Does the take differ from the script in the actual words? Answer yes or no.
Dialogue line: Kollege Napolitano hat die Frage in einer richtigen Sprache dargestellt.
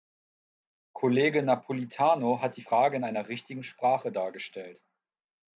no